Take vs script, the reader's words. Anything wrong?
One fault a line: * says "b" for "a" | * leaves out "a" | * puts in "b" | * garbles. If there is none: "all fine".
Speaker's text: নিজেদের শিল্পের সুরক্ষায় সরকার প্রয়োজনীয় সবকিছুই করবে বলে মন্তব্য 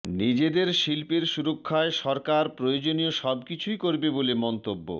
all fine